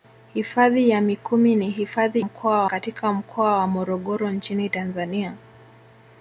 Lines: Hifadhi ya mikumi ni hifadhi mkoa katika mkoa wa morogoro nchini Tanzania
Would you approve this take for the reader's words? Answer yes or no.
yes